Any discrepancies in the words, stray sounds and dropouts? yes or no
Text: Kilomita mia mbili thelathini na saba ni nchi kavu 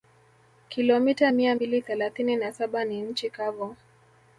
no